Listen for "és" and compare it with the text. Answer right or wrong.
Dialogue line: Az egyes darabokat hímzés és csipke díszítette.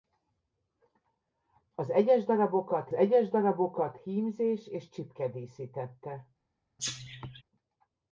right